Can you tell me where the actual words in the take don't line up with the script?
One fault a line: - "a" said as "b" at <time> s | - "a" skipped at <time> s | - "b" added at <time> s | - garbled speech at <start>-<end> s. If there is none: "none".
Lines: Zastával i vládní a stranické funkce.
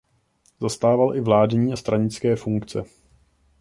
none